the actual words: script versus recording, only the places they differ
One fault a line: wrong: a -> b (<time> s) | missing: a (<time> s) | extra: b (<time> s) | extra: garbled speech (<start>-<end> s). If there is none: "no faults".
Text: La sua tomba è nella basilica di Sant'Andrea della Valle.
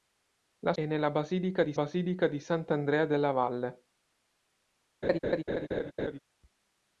wrong: sua tomba è nella -> è nella basilica di (0.7 s)